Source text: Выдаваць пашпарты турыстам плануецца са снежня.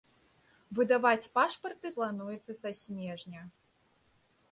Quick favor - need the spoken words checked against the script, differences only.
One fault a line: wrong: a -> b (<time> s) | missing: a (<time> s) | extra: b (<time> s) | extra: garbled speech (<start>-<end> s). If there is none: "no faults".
missing: турыстам (1.9 s)